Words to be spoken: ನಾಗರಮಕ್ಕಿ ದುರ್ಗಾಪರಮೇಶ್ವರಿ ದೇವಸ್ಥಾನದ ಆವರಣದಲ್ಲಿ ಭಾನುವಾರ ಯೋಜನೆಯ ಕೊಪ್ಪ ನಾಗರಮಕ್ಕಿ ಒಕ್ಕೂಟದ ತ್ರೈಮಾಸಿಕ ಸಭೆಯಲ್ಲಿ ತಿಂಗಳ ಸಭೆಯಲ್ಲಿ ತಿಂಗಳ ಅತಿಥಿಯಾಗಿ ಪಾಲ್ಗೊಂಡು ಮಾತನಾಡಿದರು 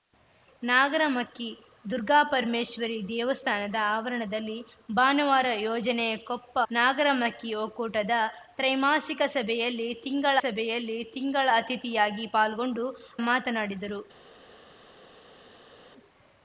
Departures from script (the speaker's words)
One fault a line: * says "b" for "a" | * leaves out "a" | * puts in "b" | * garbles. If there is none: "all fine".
all fine